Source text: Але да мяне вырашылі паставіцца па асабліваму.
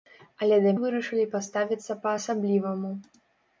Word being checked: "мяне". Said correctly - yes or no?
no